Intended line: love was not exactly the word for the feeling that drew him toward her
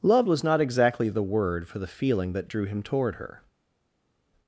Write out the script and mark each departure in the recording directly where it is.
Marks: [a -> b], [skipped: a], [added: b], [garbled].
love was not exactly the word for the feeling that drew him toward her